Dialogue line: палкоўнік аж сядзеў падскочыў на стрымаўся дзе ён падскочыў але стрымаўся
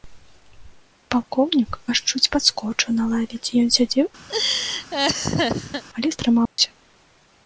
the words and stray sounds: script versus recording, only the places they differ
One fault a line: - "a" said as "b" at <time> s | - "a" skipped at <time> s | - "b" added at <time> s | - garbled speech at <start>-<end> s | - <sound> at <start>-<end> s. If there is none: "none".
- "сядзеў" said as "чуць" at 2.1 s
- "стрымаўся" said as "лаве" at 3.1 s
- "падскочыў" said as "сядзеў" at 3.8 s
- laugh at 4.3-5.8 s
- dropout at 6.5-6.6 s